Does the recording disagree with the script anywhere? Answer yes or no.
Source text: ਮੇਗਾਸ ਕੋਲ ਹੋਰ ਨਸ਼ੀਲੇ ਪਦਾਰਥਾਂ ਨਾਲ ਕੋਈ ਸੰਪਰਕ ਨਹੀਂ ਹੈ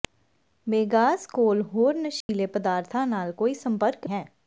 yes